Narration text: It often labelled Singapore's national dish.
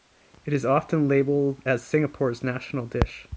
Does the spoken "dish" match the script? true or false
true